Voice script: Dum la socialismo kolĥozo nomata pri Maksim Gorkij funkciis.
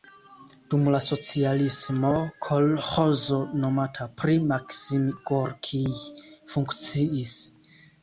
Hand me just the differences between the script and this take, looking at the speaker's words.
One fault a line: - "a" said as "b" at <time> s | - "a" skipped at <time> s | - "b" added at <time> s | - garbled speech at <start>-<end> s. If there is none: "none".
none